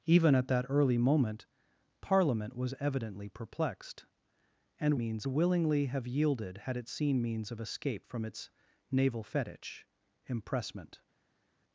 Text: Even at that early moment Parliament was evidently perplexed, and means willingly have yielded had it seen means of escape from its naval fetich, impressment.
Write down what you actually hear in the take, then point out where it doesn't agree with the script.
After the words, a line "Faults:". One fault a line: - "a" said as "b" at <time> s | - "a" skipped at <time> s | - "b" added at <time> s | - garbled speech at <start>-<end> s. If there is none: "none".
Even at that early moment Parliament was evidently perplexed, and means willingly have yielded had it seen means of escape from its naval fetich, impressment.
Faults:
none